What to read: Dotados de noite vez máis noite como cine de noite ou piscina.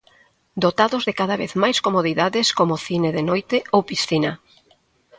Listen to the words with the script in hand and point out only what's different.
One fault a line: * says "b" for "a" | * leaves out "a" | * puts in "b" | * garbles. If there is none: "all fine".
* says "cada" for "noite"
* says "comodidades" for "noite"